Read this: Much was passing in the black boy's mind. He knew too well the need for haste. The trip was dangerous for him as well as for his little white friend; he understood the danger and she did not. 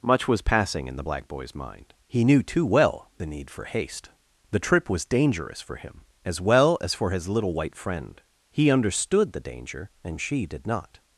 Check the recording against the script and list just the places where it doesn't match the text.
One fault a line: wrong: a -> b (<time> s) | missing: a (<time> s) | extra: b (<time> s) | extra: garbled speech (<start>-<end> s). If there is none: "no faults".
no faults